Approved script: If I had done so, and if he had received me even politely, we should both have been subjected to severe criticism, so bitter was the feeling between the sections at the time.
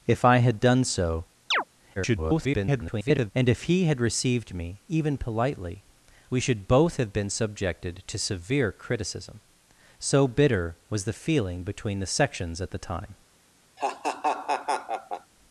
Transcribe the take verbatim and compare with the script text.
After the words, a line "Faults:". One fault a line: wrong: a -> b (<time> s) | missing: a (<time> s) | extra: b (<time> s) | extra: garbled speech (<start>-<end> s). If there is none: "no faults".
If I had done so, [garbled] and if he had received me even politely, we should both have been subjected to severe criticism, so bitter was the feeling between the sections at the time.
Faults:
extra: garbled speech (2.0-3.3 s)